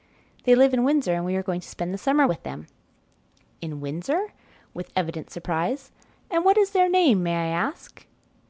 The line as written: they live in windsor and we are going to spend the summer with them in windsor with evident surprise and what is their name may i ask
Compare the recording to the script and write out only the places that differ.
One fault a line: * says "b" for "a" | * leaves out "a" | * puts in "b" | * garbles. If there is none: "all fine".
all fine